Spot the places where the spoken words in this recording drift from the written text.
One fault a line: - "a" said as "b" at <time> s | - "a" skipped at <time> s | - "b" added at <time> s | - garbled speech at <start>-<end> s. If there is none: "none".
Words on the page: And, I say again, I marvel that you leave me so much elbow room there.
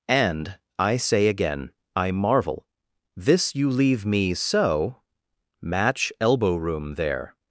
- "that" said as "this" at 3.1 s
- "much" said as "match" at 5.6 s